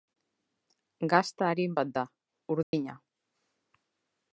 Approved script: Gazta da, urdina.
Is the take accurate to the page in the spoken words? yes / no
no